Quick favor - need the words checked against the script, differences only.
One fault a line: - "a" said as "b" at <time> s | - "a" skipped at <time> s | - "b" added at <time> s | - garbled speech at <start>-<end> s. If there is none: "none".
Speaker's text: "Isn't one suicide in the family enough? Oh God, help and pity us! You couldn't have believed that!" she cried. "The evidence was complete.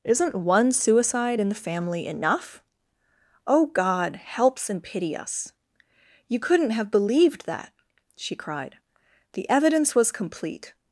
- "help" said as "helps" at 4.2 s